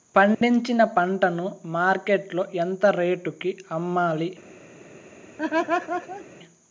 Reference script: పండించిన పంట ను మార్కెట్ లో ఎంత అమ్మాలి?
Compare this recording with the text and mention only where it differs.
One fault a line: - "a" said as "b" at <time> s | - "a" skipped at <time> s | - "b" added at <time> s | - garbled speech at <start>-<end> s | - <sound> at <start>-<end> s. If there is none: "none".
- dropout at 0.3-0.4 s
- "రేటుకి" added at 3.0 s
- laugh at 5.4-6.3 s